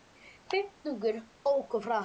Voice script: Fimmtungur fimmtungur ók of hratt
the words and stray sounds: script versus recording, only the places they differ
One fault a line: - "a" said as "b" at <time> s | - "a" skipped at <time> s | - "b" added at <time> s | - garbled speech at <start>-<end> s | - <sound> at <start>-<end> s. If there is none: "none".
- "fimmtungur" skipped at 1.1 s